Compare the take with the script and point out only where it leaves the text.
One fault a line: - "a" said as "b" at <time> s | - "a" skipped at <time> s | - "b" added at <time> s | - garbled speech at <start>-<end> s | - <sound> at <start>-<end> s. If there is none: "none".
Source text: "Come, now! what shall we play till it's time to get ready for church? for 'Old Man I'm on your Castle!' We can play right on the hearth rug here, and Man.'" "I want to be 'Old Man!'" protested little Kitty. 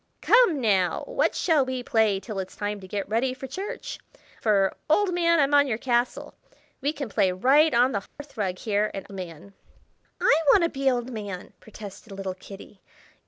- dropout at 8.1-8.2 s